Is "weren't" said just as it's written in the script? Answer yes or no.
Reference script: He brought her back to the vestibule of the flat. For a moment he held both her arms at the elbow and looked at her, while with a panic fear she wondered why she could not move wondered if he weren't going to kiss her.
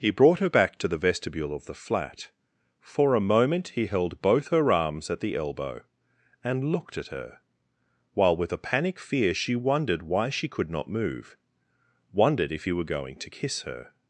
no